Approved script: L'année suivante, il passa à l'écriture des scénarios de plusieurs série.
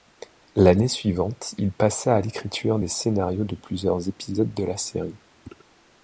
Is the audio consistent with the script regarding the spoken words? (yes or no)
no